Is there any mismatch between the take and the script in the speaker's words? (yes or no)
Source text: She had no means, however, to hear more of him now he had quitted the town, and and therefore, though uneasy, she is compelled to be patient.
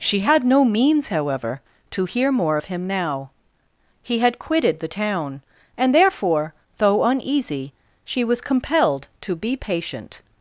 yes